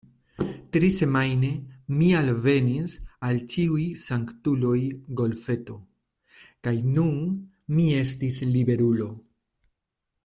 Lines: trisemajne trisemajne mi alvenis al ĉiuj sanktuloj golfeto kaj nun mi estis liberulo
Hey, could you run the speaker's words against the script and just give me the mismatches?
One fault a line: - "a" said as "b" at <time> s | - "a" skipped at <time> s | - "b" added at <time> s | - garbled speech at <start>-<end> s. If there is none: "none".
- "trisemajne" skipped at 1.5 s